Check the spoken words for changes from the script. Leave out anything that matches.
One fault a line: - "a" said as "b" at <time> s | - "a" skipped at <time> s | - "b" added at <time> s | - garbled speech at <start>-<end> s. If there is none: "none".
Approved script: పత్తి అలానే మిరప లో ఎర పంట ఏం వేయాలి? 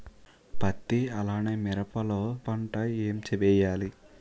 - "ఎర" skipped at 2.2 s